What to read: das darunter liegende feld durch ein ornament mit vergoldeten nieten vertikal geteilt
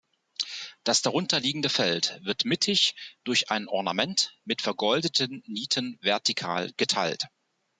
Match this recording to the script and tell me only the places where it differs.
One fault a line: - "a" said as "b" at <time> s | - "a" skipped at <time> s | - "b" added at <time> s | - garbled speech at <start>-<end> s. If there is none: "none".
- "wird mittig" added at 2.2 s